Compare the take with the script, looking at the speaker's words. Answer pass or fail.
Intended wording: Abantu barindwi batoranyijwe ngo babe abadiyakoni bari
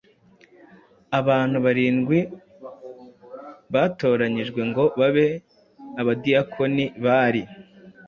pass